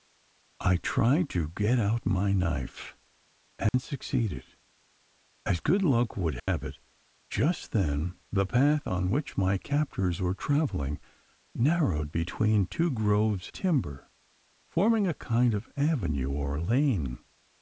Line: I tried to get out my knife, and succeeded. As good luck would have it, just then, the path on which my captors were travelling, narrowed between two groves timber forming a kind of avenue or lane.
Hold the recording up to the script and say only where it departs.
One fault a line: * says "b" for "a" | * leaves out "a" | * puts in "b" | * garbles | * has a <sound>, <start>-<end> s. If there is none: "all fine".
* has a dropout, 3.7-3.7 s
* has a dropout, 6.4-6.5 s